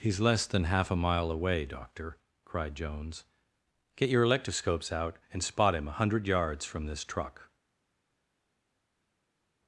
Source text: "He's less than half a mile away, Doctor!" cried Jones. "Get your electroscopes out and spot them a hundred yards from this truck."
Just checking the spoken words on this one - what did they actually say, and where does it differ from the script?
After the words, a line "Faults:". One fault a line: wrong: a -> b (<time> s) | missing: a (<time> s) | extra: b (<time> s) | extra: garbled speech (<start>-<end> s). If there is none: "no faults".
"He's less than half a mile away, Doctor!" cried Jones. "Get your electroscopes out and spot him a hundred yards from this truck."
Faults:
wrong: them -> him (5.8 s)